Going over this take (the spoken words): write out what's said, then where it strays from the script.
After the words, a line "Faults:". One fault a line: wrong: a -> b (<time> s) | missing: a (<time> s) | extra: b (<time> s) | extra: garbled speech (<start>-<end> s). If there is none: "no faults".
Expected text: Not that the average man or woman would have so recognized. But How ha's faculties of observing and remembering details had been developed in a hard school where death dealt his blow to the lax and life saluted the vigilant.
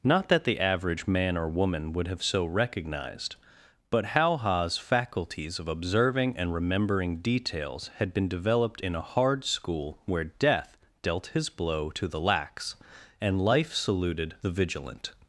Not that the average man or woman would have so recognized. But How ha's faculties of observing and remembering details had been developed in a hard school where death dealt his blow to the lax and life saluted the vigilant.
Faults:
no faults